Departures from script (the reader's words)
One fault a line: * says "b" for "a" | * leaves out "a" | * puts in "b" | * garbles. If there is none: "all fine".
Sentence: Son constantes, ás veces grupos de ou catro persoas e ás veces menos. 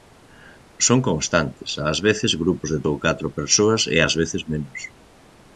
all fine